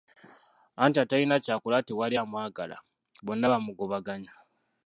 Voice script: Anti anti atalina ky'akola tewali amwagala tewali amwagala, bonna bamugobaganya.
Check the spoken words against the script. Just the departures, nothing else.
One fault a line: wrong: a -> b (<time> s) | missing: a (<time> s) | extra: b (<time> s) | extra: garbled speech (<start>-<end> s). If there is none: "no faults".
missing: anti (1.0 s)
missing: tewali amwagala (2.8 s)